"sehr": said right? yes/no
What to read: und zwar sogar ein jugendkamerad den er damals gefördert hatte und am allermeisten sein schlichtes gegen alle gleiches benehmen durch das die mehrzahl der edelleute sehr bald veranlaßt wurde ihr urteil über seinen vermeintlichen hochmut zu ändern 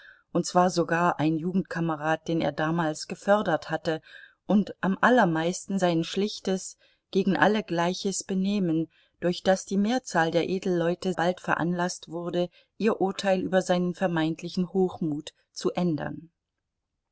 no